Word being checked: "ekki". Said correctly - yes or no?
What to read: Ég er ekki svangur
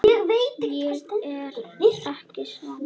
yes